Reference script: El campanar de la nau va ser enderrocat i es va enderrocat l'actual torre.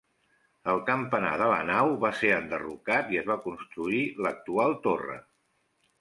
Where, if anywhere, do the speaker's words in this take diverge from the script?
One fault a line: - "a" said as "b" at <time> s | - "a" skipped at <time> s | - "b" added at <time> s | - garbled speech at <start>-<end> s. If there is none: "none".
- "enderrocat" said as "construir" at 3.5 s